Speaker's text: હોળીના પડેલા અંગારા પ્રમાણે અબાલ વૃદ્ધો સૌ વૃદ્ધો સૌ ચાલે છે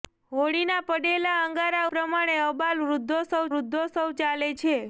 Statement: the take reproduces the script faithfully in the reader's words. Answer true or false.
true